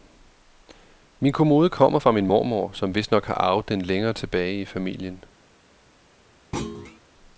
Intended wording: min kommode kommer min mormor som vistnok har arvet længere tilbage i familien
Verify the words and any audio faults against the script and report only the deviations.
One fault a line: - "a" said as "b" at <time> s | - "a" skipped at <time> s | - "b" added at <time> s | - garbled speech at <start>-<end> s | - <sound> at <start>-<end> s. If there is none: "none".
- "fra" added at 2.0 s
- "den" added at 3.7 s
- thud at 6.5-7.0 s